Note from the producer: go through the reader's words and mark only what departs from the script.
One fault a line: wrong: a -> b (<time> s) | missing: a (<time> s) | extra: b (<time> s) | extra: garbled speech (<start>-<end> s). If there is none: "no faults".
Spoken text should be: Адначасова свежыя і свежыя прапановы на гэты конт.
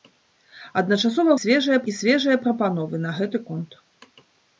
no faults